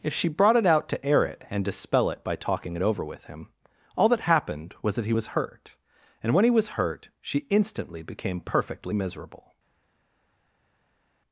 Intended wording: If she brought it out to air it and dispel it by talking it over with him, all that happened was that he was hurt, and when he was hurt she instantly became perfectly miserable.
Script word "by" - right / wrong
right